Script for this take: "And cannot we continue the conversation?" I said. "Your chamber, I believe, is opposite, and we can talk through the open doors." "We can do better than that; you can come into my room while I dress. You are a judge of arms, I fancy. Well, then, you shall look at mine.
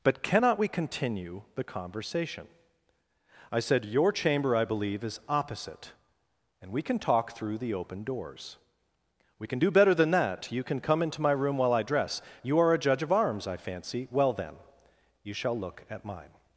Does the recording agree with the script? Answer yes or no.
no